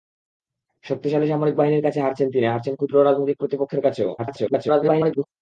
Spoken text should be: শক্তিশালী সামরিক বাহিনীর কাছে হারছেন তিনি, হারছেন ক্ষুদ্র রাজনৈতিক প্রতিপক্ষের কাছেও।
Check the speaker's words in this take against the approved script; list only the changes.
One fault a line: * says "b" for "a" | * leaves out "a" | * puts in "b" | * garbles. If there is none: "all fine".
* garbles